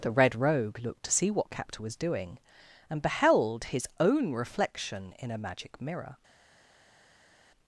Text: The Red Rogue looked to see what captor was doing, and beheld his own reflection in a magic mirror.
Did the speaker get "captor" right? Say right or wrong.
right